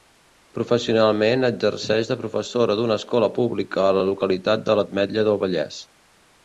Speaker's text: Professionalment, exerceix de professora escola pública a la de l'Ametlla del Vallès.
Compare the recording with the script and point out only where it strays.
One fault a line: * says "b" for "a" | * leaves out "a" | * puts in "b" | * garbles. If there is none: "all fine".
* puts in "d'una"
* puts in "localitat"